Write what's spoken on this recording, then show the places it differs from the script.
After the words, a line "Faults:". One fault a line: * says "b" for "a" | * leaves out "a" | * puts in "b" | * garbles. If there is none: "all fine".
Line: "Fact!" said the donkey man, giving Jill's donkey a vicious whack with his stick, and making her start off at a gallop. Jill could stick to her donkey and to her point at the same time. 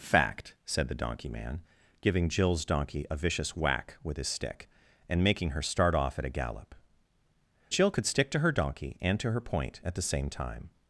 "Fact!" said the donkey man, giving Jill's donkey a vicious whack with his stick, and making her start off at a gallop. Jill could stick to her donkey and to her point at the same time.
Faults:
all fine